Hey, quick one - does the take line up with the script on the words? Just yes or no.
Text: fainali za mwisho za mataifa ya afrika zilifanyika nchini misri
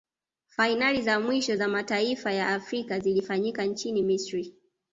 yes